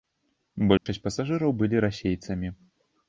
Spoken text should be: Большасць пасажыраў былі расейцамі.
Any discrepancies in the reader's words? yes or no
no